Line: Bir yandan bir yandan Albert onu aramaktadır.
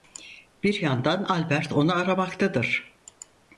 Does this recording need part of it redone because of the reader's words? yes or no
yes